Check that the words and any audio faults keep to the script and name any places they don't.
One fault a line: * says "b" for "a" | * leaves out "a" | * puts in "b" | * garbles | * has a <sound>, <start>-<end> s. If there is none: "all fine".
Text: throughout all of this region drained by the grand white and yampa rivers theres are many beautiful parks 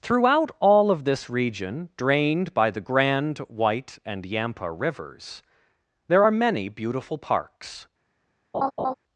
* says "there" for "theres"
* has a laugh, 8.5-8.9 s